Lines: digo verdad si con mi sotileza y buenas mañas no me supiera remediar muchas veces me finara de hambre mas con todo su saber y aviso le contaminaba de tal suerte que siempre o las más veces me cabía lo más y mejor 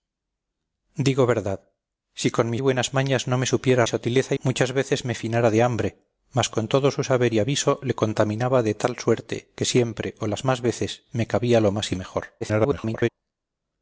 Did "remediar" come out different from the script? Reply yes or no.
yes